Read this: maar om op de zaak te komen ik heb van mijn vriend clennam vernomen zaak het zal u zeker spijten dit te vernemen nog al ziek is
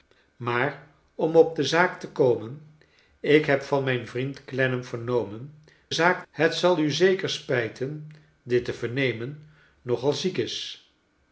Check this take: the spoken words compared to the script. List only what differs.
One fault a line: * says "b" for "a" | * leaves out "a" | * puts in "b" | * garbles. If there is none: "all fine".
all fine